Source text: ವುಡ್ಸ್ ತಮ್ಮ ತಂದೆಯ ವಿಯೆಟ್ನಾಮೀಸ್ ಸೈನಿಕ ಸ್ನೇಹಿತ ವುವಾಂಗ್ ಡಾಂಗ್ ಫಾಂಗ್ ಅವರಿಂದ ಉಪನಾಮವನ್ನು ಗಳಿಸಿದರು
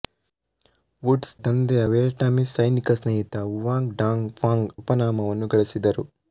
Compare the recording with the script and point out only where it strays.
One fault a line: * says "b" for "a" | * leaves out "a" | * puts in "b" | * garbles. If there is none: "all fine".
* leaves out "ತಮ್ಮ"
* leaves out "ಅವರಿಂದ"